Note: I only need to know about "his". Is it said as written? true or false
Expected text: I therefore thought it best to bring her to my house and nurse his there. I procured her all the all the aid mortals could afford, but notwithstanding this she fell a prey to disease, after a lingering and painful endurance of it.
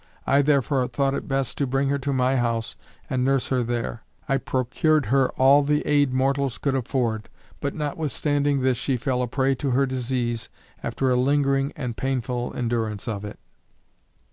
false